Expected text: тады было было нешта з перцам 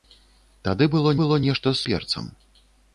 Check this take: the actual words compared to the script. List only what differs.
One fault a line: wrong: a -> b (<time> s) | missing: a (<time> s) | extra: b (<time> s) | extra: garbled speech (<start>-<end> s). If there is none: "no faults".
no faults